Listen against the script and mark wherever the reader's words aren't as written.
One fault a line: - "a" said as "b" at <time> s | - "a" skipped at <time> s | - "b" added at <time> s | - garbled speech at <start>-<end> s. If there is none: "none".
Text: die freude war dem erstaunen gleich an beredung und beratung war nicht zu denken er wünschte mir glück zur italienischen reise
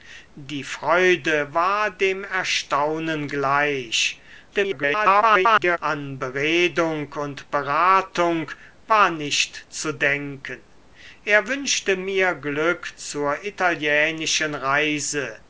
- garbled speech at 4.5-5.8 s